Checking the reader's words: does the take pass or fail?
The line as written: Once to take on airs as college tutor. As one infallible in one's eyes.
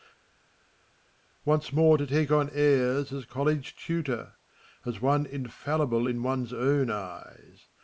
fail